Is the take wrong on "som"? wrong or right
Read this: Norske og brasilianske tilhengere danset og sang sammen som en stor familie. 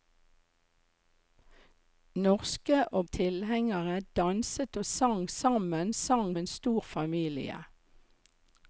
wrong